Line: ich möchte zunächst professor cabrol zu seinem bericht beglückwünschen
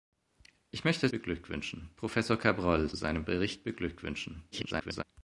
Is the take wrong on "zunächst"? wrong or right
wrong